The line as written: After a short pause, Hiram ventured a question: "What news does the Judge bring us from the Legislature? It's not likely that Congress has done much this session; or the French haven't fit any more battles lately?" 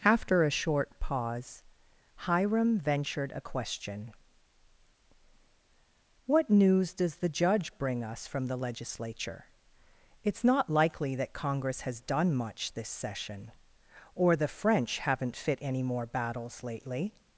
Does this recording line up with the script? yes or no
yes